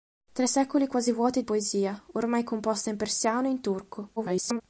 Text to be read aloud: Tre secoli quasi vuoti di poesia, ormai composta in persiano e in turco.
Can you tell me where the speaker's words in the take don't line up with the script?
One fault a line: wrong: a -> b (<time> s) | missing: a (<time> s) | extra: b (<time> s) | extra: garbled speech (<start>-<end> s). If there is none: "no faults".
missing: di (1.4 s)
extra: garbled speech (4.2-4.6 s)